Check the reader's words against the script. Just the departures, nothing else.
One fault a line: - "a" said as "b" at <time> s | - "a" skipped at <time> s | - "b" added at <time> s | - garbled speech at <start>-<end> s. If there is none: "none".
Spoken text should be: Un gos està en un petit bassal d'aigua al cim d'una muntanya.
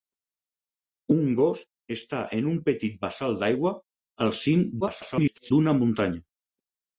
- garbled speech at 4.8-5.5 s